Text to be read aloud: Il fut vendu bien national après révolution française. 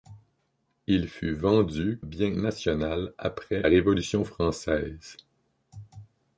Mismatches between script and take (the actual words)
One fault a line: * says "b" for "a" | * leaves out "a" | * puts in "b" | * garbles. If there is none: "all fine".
all fine